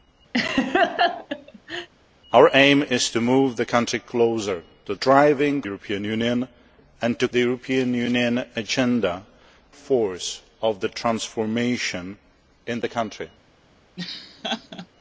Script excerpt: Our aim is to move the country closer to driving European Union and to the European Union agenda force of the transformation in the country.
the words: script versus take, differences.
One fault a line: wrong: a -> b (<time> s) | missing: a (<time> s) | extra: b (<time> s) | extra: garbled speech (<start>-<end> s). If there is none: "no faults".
no faults